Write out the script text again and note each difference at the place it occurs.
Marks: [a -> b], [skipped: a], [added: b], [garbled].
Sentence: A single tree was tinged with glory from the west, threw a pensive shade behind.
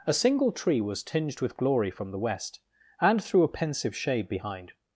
A single tree was tinged with glory from the west, [added: and] threw a pensive shade behind.